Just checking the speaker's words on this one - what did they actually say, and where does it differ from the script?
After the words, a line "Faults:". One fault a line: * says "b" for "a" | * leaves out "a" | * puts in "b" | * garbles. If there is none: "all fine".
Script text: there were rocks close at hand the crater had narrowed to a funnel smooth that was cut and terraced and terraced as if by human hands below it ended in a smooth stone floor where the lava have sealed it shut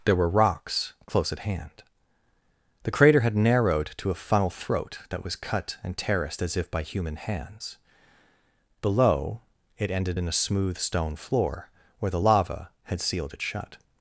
there were rocks close at hand the crater had narrowed to a funnel throat that was cut and terraced as if by human hands below it ended in a smooth stone floor where the lava had sealed it shut
Faults:
* says "throat" for "smooth"
* leaves out "and terraced"
* says "had" for "have"